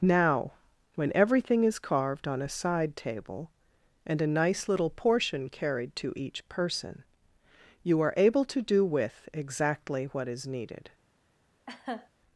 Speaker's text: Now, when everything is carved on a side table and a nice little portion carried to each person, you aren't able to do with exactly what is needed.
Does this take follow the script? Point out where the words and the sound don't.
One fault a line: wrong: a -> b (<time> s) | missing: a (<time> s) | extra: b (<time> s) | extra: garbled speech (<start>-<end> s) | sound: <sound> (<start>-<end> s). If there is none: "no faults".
wrong: aren't -> are (8.0 s)
sound: laugh (11.7-12.1 s)